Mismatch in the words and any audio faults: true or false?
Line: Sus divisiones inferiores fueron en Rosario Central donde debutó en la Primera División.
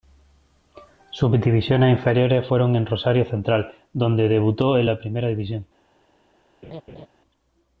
true